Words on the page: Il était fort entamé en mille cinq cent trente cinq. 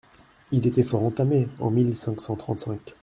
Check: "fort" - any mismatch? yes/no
no